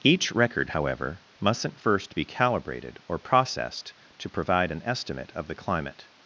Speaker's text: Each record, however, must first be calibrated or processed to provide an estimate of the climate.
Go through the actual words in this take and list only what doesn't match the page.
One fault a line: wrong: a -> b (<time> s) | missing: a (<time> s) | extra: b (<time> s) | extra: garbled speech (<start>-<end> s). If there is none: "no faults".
wrong: must -> mustn't (1.4 s)